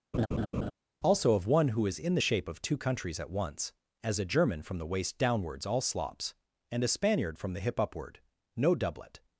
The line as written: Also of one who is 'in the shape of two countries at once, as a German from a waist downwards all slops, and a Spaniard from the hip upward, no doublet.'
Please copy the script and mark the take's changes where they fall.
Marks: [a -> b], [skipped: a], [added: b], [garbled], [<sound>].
[laugh] Also of one who is 'in the shape of two countries at once, as a German from [a -> the] waist downwards all slops, and a Spaniard from the hip upward, no doublet.'